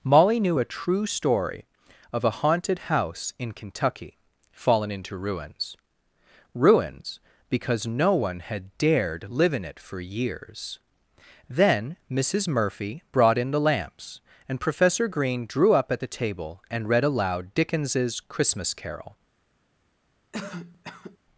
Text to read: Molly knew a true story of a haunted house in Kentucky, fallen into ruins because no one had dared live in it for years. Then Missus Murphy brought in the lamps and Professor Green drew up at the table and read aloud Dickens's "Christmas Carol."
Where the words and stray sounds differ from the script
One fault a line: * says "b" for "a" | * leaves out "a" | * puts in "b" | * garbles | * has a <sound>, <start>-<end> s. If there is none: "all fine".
* puts in "ruins"
* has a cough, 20.3-21.2 s